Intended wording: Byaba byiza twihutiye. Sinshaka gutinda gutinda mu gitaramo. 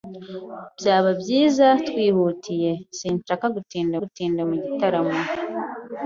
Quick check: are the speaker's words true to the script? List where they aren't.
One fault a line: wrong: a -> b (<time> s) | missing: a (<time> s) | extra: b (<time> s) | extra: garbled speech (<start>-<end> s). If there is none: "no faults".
no faults